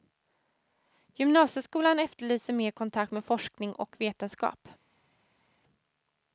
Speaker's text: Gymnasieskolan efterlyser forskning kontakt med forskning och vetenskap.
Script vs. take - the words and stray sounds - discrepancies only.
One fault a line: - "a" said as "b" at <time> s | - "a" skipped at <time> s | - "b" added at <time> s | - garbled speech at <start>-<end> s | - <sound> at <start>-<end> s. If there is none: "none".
- "forskning" said as "mer" at 2.5 s